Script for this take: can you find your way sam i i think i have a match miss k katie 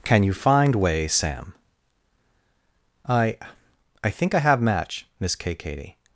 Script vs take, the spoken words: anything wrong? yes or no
yes